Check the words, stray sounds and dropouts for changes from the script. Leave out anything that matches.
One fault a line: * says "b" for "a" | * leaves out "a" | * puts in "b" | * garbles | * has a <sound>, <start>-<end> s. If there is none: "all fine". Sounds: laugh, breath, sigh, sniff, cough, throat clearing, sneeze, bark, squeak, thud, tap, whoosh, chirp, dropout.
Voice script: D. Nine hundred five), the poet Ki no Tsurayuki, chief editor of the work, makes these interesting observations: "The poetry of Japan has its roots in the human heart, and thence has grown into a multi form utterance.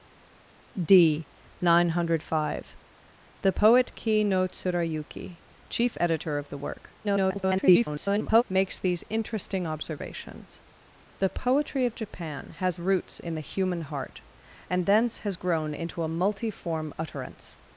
* garbles
* leaves out "its"